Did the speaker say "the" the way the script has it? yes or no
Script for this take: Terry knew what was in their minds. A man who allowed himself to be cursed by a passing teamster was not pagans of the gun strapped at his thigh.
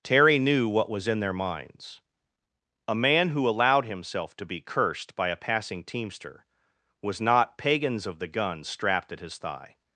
yes